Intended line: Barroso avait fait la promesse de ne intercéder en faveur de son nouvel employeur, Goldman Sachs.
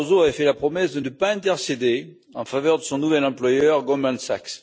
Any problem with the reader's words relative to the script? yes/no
yes